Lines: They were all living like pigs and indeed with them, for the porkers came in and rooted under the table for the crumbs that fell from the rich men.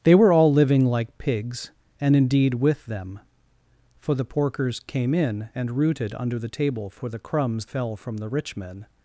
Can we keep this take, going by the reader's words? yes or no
no